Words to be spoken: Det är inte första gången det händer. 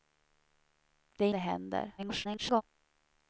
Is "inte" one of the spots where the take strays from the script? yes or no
yes